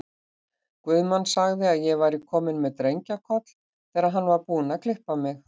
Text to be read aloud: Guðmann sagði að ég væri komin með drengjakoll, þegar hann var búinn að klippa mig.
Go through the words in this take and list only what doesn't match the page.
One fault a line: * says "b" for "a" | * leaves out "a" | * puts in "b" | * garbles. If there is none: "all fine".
all fine